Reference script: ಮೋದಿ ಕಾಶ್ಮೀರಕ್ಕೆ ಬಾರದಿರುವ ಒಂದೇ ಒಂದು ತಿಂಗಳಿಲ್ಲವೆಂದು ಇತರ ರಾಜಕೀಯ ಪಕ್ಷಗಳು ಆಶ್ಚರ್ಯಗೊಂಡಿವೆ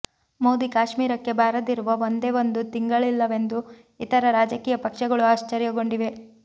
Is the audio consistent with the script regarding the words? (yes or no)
yes